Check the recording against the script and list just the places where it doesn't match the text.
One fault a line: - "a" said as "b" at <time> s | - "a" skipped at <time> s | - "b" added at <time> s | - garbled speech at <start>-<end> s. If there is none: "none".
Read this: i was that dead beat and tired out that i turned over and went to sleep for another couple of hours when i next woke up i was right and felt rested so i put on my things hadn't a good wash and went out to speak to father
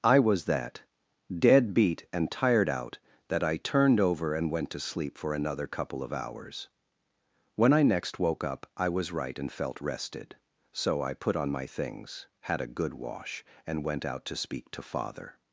- "hadn't" said as "had" at 12.4 s